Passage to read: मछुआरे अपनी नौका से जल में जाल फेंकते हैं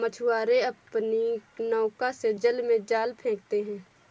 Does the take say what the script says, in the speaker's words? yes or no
yes